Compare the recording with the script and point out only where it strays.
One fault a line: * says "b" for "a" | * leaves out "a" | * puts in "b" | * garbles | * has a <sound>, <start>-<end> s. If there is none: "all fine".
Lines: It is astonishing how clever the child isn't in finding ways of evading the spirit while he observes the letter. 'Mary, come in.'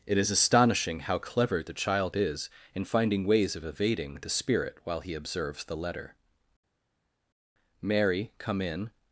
* says "is" for "isn't"